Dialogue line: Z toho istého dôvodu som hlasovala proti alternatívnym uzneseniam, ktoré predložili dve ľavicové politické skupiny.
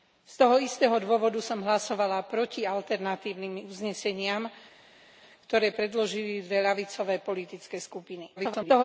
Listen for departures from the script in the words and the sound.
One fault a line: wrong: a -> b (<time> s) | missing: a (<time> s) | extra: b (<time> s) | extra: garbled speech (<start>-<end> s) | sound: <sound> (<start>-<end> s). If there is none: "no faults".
extra: garbled speech (8.4-8.8 s)